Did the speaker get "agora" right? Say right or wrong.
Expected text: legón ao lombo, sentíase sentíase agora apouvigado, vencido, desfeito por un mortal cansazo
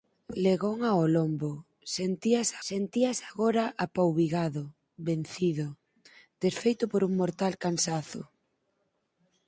right